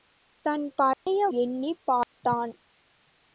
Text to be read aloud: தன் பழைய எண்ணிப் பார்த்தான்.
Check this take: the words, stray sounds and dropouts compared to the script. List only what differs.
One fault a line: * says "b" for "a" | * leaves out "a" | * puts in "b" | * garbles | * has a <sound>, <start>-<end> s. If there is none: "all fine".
* has a dropout, 0.9-1.1 s
* has a dropout, 2.0-2.2 s